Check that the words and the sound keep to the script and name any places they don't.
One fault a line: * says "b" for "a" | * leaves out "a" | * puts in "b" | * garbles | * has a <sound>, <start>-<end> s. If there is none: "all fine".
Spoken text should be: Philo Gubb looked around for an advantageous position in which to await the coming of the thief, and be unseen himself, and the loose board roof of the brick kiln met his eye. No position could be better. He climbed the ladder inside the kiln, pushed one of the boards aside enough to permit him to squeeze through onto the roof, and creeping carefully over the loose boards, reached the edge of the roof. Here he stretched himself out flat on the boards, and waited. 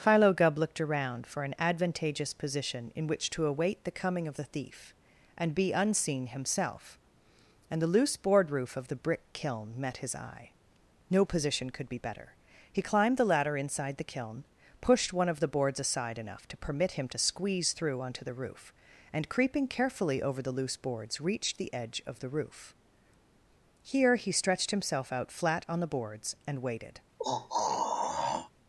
* has a throat clearing, 27.2-28.5 s